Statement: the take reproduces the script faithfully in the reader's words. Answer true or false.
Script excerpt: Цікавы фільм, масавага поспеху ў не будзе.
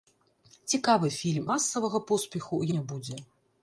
true